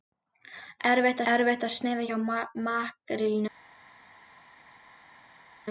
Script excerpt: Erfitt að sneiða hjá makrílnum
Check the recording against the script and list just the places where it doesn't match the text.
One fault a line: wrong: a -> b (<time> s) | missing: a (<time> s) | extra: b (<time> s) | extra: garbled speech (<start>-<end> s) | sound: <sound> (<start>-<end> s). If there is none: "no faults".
extra: erfitt (1.3 s)